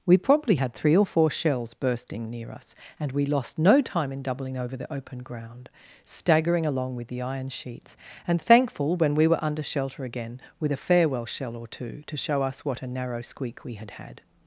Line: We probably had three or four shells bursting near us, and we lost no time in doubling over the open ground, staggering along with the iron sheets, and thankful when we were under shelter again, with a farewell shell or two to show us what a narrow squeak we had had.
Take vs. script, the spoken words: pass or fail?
pass